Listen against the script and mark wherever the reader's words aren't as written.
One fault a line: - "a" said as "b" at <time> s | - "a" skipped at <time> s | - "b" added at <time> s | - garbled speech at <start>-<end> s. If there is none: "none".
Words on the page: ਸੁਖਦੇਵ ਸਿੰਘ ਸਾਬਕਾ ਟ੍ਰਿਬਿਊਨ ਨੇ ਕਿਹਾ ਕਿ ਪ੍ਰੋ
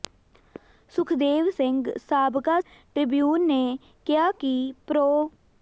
none